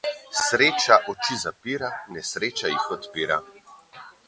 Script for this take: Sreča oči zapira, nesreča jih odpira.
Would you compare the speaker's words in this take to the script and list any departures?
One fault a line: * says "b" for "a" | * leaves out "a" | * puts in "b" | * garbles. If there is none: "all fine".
all fine